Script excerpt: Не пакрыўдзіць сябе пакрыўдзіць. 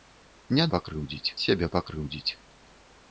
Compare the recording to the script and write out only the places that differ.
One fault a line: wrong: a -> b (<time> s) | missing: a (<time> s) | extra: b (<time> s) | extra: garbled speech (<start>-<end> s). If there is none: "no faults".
no faults